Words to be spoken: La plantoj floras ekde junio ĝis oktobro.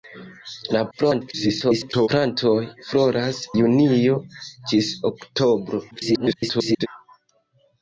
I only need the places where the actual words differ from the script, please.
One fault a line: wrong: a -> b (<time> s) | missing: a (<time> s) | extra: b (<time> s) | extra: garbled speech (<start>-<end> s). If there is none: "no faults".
extra: garbled speech (0.9-2.1 s)
missing: ekde (3.4 s)
extra: garbled speech (5.9-6.9 s)